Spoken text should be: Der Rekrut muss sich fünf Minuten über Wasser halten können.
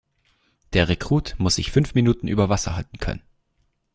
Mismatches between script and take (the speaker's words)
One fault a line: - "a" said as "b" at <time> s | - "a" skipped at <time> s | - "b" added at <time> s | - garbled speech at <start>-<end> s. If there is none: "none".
none